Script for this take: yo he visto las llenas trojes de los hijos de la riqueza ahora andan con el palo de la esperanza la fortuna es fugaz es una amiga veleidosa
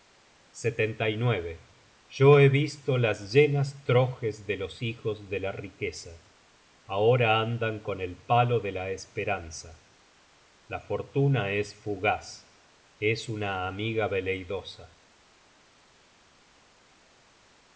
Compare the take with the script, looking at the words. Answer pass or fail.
pass